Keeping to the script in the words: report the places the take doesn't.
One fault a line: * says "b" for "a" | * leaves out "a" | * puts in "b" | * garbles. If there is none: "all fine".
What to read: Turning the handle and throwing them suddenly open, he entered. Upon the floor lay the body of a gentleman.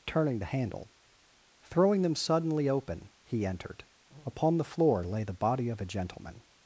* leaves out "and"